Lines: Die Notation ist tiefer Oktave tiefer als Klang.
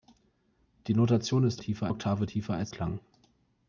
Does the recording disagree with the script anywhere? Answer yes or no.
no